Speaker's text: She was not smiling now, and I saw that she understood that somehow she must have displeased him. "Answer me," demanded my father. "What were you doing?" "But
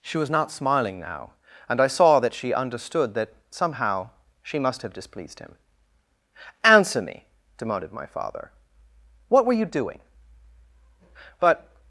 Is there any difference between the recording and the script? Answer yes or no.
no